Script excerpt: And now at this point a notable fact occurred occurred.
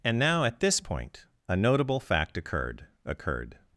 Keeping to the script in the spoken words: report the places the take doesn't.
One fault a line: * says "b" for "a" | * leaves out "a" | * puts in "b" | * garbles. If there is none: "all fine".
all fine